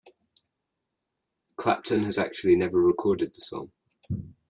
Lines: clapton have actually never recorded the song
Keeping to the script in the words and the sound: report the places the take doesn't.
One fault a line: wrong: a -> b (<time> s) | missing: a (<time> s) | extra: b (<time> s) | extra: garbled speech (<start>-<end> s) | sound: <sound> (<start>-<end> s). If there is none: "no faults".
wrong: have -> has (2.0 s)